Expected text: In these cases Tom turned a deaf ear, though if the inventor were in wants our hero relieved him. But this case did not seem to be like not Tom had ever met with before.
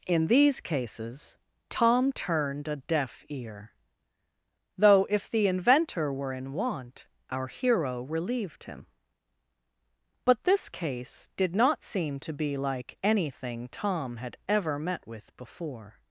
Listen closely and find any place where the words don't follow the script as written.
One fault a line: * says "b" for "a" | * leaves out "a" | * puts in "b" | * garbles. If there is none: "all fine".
* says "want" for "wants"
* says "anything" for "not"